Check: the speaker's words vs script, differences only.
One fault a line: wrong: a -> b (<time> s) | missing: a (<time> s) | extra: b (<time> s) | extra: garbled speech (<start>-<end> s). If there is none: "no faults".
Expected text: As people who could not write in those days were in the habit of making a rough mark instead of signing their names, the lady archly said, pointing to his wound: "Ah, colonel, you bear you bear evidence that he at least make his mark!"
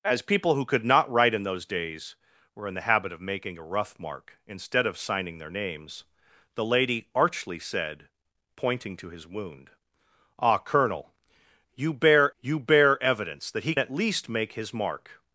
no faults